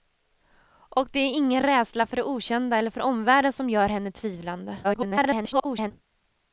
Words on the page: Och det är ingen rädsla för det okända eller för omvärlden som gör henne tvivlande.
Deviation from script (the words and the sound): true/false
true